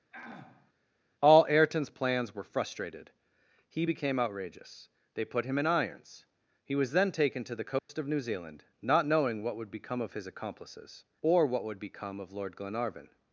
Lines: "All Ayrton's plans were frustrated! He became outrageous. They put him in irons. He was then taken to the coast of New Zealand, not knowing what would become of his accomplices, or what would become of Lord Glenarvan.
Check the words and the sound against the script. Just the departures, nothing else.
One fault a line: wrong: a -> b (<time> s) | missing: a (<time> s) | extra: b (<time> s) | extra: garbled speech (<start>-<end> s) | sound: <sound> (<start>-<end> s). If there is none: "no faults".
sound: throat clearing (0.1-0.7 s)
sound: dropout (7.8-7.9 s)